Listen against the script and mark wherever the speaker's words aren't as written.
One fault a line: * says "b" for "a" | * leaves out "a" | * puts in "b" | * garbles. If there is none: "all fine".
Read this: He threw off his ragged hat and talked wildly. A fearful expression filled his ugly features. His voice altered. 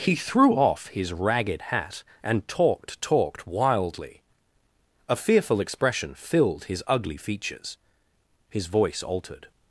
* puts in "talked"